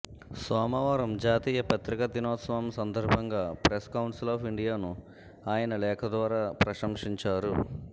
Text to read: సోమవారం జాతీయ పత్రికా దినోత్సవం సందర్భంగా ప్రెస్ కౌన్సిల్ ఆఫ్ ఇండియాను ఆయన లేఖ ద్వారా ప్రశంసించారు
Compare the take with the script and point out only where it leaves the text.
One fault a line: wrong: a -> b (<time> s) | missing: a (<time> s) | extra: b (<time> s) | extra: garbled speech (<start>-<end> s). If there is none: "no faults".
no faults